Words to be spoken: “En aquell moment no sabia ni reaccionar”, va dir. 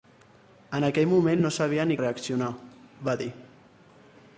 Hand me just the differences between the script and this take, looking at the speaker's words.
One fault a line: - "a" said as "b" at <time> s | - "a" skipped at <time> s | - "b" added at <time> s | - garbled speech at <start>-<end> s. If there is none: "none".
none